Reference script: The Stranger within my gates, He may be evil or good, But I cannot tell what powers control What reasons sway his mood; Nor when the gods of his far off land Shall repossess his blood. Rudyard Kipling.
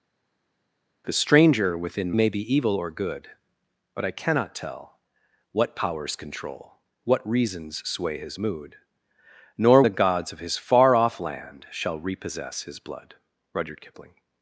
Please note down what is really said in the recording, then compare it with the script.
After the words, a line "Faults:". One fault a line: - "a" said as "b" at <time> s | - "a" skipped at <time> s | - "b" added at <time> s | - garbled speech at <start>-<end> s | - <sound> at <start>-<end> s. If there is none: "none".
The Stranger within may be evil or good, But I cannot tell what powers control What reasons sway his mood; Nor the gods of his far off land Shall repossess his blood. Rudyard Kipling.
Faults:
- "my gates He" skipped at 2.1 s
- "when" skipped at 9.8 s